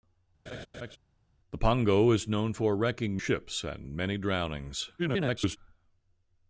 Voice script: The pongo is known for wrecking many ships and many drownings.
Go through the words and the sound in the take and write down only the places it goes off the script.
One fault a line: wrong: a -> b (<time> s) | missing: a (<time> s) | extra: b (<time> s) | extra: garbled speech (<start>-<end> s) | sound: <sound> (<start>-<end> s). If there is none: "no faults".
sound: laugh (0.5-1.0 s)
missing: many (3.2 s)
extra: garbled speech (5.0-5.6 s)